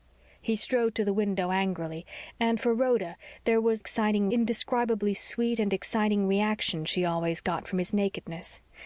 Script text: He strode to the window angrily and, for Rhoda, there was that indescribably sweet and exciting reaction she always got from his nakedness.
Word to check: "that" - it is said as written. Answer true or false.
false